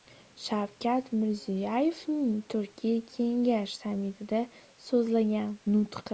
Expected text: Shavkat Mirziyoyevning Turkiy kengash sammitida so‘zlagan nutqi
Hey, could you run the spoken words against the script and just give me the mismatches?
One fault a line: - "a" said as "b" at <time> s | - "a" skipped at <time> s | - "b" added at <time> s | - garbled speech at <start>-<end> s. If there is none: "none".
none